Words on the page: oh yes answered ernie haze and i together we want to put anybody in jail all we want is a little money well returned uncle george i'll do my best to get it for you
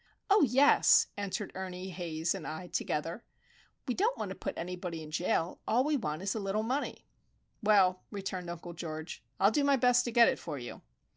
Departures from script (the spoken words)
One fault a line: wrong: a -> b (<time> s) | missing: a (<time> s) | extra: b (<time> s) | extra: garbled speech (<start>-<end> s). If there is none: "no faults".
extra: don't (3.9 s)